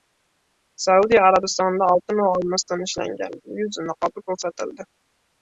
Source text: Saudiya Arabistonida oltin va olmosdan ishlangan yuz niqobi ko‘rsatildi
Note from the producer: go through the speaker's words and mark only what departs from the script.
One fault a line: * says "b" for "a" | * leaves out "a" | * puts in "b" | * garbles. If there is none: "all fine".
all fine